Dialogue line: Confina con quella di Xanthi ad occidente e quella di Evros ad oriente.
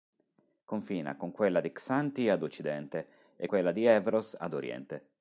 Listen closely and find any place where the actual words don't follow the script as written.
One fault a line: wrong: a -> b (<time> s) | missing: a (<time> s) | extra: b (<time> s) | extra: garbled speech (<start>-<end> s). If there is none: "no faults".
no faults